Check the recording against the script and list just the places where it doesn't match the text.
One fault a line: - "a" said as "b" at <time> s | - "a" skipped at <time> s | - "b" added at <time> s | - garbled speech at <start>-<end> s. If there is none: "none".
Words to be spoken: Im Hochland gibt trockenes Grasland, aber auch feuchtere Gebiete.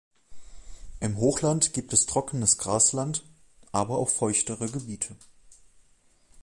- "es" added at 1.9 s